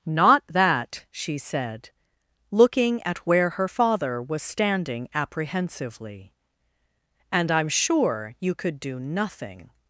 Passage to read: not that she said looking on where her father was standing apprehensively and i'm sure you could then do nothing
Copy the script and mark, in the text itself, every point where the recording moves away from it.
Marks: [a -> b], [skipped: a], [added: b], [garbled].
not that she said looking [on -> at] where her father was standing apprehensively and i'm sure you could [skipped: then] do nothing